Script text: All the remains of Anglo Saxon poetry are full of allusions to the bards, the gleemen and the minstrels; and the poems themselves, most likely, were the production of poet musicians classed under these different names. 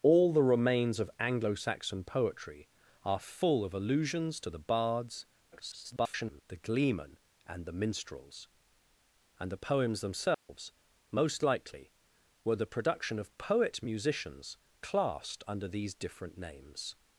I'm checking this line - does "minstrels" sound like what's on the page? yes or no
yes